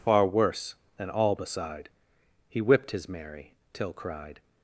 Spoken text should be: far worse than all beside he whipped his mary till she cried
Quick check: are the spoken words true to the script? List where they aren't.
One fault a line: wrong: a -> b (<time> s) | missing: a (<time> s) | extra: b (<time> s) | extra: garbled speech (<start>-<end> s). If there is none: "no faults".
missing: she (3.9 s)